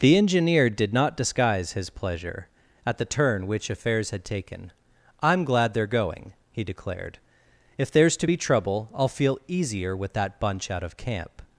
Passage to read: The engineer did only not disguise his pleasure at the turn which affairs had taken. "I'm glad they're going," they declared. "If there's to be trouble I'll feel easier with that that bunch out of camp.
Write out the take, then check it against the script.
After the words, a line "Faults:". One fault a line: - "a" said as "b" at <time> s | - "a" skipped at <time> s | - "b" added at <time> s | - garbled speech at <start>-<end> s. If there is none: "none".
The engineer did not disguise his pleasure at the turn which affairs had taken. "I'm glad they're going," he declared. "If there's to be trouble I'll feel easier with that bunch out of camp.
Faults:
- "only" skipped at 0.9 s
- "they" said as "he" at 6.5 s
- "that" skipped at 10.4 s